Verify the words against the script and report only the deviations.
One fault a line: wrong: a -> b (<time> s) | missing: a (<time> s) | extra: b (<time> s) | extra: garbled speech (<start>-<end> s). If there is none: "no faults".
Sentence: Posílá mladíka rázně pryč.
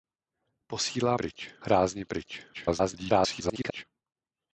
wrong: mladíka -> pryč (1.1 s)
extra: garbled speech (2.5-3.8 s)